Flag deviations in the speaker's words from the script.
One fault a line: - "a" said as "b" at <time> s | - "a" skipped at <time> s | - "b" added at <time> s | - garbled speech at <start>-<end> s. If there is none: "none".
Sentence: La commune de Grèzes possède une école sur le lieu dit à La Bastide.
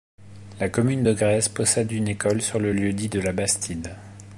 - "à" said as "de" at 3.1 s